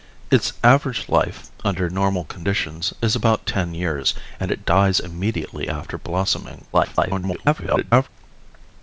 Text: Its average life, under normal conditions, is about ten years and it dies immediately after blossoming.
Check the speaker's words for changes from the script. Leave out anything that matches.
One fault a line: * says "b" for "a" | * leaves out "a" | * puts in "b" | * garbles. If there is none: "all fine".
* garbles